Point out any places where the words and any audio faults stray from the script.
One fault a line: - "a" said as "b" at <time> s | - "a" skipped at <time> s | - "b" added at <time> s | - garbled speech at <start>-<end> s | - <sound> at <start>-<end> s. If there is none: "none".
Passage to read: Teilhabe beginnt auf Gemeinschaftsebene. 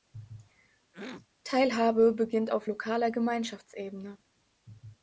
- throat clearing at 0.9-1.3 s
- "lokaler" added at 2.7 s